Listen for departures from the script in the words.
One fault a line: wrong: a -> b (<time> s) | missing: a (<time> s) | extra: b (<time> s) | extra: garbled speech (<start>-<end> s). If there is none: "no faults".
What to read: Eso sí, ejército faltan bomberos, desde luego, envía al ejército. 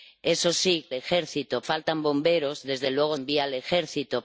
no faults